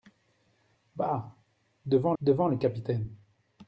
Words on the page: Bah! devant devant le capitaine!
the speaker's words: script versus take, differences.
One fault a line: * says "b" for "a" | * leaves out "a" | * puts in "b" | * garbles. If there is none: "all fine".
all fine